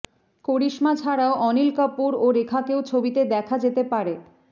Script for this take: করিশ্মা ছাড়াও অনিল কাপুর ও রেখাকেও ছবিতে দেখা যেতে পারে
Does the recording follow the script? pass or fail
pass